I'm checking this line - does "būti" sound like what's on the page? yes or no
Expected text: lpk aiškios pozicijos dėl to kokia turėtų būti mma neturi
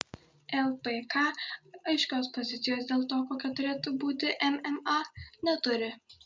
yes